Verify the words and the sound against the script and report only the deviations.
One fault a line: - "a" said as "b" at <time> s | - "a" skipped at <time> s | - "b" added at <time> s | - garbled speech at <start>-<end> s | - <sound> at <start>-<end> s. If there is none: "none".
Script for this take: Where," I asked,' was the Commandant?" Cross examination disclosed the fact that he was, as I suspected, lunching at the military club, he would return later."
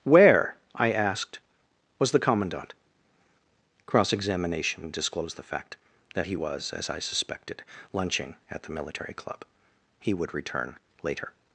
none